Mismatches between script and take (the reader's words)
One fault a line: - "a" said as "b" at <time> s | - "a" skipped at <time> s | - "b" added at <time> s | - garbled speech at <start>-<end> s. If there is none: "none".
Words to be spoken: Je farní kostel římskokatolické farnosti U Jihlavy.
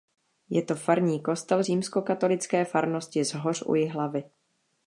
- "to" added at 0.6 s
- "Zhoř" added at 3.2 s